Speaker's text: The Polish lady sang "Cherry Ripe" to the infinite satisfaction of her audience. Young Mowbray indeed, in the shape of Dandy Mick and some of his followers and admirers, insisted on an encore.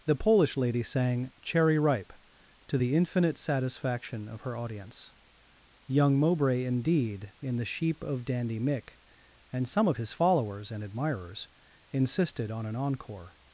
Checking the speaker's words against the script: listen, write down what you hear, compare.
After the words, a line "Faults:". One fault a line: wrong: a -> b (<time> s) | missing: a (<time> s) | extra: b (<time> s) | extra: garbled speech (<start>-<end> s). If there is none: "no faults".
The Polish lady sang "Cherry Ripe" to the infinite satisfaction of her audience. Young Mowbray indeed, in the sheep of Dandy Mick and some of his followers and admirers, insisted on an encore.
Faults:
wrong: shape -> sheep (7.7 s)